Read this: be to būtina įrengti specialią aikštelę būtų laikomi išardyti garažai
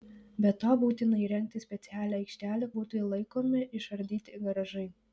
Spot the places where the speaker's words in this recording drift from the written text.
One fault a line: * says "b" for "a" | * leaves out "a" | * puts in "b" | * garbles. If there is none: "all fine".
all fine